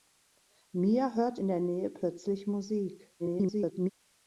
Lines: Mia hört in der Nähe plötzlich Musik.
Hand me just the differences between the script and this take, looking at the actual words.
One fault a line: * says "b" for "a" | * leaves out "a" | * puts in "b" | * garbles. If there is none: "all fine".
* garbles